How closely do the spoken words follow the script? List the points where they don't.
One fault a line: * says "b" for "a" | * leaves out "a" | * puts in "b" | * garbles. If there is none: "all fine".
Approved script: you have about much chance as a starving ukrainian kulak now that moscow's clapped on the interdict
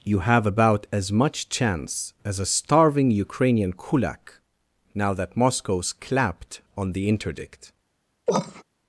* puts in "as"